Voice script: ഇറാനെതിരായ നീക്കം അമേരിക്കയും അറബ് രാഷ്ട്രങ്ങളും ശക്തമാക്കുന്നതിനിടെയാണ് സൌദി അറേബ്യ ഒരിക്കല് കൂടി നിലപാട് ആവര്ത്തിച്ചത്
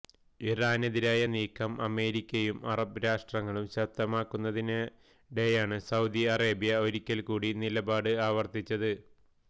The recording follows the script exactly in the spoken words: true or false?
true